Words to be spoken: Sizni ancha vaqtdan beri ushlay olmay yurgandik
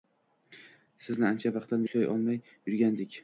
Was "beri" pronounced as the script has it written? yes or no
no